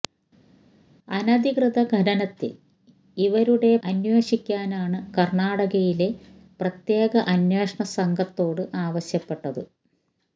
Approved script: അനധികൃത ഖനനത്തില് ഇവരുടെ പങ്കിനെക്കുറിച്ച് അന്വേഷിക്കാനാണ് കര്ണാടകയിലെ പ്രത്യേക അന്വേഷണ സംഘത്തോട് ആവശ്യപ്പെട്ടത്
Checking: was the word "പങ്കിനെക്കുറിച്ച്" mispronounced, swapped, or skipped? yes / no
yes